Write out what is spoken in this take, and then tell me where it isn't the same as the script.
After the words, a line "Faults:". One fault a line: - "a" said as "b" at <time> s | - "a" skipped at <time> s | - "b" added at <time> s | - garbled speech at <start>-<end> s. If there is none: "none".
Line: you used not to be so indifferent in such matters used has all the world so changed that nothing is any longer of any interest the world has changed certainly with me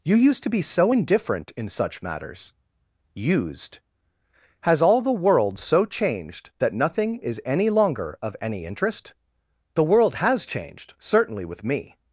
you used to be so indifferent in such matters used has all the world so changed that nothing is any longer of any interest the world has changed certainly with me
Faults:
- "not" skipped at 0.4 s